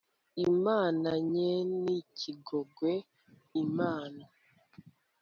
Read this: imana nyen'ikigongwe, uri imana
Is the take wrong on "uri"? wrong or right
wrong